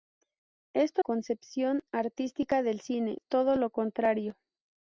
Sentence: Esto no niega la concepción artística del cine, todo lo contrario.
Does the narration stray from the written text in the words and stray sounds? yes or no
yes